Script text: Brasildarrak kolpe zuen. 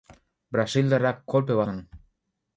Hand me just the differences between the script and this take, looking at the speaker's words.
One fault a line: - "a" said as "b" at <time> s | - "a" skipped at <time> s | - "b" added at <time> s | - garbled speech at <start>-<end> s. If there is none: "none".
none